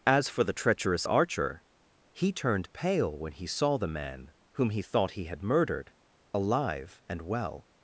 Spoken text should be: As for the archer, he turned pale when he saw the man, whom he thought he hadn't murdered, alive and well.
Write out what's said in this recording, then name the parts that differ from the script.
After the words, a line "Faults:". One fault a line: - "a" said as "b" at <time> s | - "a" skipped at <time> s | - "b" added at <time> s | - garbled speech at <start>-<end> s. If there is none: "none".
As for the treacherous archer, he turned pale when he saw the man, whom he thought he had murdered, alive and well.
Faults:
- "treacherous" added at 0.6 s
- "hadn't" said as "had" at 5.2 s